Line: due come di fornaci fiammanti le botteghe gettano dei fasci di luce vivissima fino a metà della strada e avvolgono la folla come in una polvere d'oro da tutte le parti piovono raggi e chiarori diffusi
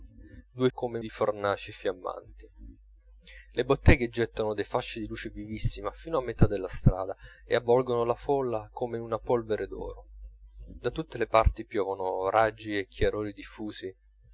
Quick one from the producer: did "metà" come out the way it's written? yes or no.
yes